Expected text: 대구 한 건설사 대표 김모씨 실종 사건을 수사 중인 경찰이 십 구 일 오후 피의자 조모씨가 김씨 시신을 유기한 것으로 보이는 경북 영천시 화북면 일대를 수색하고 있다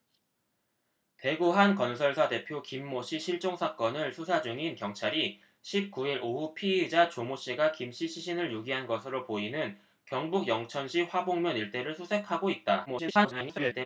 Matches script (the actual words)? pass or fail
fail